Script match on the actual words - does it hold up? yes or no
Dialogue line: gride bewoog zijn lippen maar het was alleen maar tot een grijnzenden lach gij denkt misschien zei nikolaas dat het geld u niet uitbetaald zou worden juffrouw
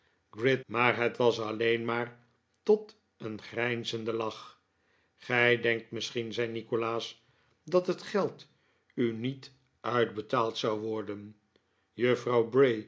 no